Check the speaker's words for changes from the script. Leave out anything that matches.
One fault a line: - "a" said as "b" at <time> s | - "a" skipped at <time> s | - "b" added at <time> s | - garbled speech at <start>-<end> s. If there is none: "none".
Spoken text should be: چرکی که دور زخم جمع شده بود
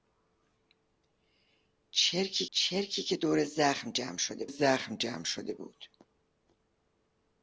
- "چرکی" added at 2.5 s
- "زخم جمع شده" added at 4.5 s